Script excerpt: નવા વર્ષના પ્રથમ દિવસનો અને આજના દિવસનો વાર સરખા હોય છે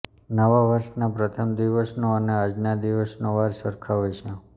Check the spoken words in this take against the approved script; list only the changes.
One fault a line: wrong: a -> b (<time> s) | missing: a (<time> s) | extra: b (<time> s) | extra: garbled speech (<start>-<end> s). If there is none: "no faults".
no faults